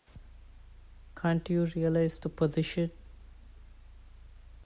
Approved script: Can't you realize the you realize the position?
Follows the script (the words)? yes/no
no